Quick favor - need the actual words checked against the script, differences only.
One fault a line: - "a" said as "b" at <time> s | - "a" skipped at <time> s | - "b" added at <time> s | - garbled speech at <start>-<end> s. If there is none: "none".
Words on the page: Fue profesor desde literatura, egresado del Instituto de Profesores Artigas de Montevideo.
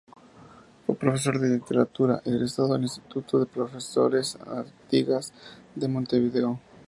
- "desde" said as "de" at 1.4 s